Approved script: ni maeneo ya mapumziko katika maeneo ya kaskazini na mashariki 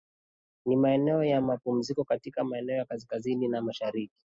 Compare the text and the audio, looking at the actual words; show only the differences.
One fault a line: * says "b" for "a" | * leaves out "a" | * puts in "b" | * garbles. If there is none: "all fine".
all fine